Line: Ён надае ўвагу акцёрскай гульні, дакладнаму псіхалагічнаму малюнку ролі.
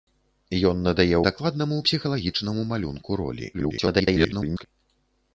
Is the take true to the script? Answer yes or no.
no